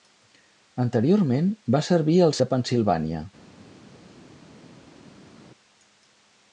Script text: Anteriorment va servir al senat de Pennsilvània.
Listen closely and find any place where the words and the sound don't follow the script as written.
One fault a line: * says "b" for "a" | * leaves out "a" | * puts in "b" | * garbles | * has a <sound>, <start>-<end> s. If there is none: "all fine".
* leaves out "senat"